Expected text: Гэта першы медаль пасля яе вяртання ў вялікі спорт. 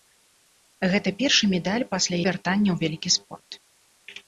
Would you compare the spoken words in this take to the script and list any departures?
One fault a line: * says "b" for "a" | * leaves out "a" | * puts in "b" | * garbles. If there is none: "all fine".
* leaves out "яе"